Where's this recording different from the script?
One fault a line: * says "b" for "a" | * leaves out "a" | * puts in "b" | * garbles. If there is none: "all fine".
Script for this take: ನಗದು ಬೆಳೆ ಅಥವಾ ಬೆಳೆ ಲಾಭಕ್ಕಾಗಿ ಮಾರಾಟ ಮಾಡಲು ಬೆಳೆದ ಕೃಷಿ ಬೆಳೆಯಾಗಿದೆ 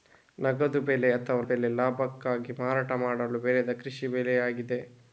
all fine